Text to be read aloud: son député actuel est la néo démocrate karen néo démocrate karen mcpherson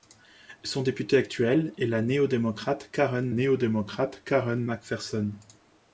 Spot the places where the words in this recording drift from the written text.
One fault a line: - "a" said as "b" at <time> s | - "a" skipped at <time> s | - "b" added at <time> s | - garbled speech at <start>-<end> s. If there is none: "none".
none